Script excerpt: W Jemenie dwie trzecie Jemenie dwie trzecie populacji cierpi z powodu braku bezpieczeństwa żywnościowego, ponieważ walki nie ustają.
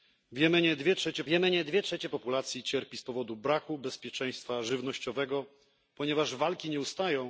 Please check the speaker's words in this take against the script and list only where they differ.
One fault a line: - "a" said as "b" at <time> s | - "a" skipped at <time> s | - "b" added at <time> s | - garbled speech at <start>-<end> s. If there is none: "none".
none